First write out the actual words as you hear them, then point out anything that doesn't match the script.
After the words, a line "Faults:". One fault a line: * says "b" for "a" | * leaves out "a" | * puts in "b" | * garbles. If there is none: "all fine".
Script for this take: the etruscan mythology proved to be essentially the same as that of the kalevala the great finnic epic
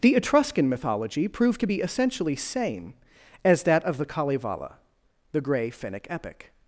the etruscan mythology proved to be essentially same as that of the kalevala the grey finnic epic
Faults:
* leaves out "the"
* says "grey" for "great"